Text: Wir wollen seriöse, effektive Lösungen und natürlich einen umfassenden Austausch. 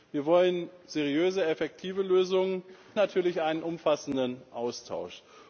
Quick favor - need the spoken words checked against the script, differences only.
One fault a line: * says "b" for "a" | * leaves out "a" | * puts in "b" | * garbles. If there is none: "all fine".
* leaves out "und"